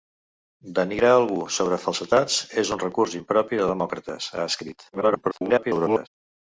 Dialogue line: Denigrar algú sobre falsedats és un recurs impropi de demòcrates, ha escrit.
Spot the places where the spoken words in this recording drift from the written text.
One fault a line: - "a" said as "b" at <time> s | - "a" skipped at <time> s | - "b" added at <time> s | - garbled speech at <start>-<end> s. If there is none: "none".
- garbled speech at 4.9-6.1 s